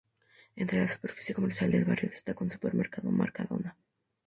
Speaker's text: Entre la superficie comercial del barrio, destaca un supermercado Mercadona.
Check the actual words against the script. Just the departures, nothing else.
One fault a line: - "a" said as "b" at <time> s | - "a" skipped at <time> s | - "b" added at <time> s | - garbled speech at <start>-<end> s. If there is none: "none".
none